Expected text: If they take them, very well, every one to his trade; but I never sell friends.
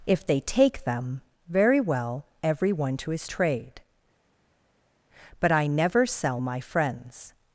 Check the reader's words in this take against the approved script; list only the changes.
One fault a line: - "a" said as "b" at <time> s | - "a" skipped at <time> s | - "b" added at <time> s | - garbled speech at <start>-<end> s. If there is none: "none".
- "my" added at 6.4 s